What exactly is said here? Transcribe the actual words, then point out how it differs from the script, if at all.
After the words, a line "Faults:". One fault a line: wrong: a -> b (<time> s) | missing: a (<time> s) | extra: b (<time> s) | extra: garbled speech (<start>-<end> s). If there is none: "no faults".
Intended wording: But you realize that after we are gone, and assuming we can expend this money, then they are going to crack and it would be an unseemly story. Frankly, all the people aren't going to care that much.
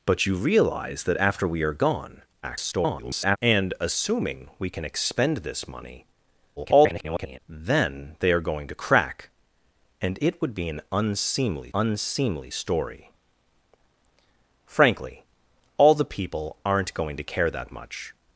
But you realize that after we are gone, [garbled] and assuming we can expend this money, [garbled] then they are going to crack and it would be an unseemly unseemly story. Frankly, all the people aren't going to care that much.
Faults:
extra: garbled speech (2.4-3.4 s)
extra: garbled speech (6.6-7.4 s)
extra: unseemly (11.7 s)